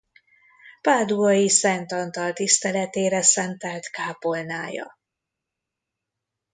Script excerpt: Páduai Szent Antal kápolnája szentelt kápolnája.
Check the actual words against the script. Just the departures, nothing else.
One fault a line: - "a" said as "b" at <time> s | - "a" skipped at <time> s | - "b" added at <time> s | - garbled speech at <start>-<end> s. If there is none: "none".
- "kápolnája" said as "tiszteletére" at 2.3 s